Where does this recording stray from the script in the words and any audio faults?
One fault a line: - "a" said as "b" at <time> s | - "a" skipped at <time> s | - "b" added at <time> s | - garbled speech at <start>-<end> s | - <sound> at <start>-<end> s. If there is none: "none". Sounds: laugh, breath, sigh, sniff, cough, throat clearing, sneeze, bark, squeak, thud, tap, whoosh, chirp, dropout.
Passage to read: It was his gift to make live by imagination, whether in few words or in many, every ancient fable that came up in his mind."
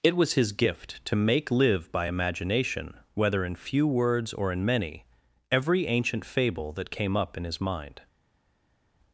none